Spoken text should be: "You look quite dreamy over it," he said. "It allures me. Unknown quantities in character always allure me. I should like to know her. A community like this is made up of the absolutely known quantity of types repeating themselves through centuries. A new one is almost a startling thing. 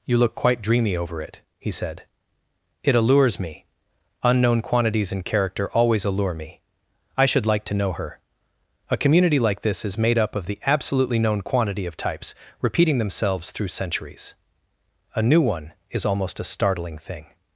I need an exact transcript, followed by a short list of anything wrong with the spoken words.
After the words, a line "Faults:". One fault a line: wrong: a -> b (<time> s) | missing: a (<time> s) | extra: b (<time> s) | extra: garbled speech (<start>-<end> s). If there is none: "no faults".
"You look quite dreamy over it," he said. "It allures me. Unknown quantities in character always allure me. I should like to know her. A community like this is made up of the absolutely known quantity of types repeating themselves through centuries. A new one is almost a startling thing.
Faults:
no faults